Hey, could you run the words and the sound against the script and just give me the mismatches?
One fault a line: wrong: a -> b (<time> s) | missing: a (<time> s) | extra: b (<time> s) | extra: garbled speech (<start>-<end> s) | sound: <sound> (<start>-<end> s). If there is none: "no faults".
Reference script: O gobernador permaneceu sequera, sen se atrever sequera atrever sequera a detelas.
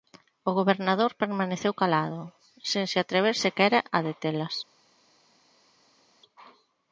wrong: sequera -> calado (1.8 s)
missing: atrever sequera (3.8 s)